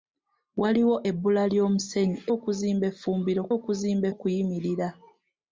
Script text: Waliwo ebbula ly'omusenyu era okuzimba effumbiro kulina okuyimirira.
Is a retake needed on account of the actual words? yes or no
yes